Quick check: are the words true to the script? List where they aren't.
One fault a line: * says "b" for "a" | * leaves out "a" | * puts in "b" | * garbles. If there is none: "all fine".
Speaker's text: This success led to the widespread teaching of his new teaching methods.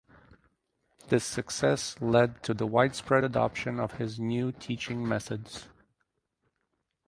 * says "adoption" for "teaching"